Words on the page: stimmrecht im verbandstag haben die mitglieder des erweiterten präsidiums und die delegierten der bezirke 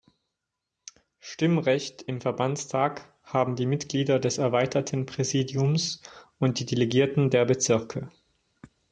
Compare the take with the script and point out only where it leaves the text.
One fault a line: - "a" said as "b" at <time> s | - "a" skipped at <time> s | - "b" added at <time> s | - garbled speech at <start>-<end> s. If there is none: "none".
none